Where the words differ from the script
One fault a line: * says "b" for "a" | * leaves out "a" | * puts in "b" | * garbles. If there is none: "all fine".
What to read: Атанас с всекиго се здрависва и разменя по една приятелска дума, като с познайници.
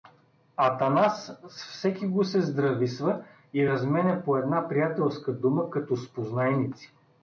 all fine